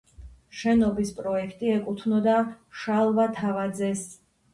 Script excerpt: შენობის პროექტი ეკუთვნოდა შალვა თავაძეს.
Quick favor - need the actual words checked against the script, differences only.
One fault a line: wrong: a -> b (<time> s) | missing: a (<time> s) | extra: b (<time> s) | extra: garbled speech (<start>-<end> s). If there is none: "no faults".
no faults